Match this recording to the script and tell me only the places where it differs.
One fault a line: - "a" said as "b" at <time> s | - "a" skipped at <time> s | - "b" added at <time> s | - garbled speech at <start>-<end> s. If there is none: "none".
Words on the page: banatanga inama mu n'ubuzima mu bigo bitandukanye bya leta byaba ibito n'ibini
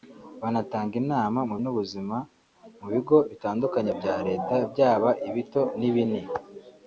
none